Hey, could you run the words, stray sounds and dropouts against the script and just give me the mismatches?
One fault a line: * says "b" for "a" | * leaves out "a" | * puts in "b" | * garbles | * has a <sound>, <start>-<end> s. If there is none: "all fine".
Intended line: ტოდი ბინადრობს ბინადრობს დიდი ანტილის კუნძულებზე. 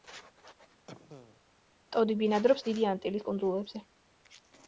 * has a cough, 0.9-1.4 s
* leaves out "ბინადრობს"